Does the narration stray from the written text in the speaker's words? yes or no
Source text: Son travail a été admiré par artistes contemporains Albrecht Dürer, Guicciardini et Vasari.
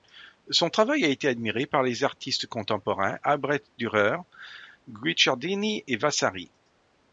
yes